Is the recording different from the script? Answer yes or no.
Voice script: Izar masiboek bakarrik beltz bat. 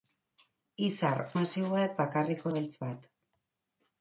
no